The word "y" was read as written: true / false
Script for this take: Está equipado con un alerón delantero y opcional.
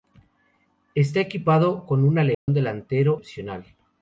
false